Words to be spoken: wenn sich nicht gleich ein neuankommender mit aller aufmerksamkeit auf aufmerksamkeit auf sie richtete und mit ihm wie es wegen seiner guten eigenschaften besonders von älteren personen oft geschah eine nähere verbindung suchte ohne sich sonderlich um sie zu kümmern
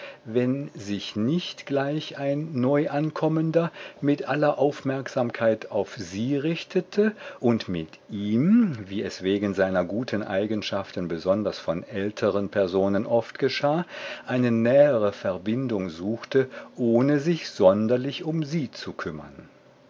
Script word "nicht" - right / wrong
right